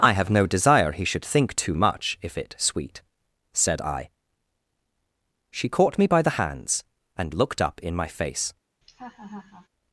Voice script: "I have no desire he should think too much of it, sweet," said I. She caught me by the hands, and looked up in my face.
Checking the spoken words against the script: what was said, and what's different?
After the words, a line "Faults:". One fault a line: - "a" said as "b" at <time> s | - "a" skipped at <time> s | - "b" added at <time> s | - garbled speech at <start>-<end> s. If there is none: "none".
"I have no desire he should think too much if it, sweet," said I. She caught me by the hands, and looked up in my face.
Faults:
- "of" said as "if" at 2.2 s